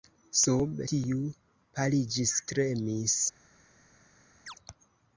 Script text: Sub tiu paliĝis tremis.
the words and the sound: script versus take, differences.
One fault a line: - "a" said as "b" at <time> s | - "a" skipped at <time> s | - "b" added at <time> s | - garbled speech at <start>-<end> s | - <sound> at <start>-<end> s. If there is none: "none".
- chirp at 4.5-4.6 s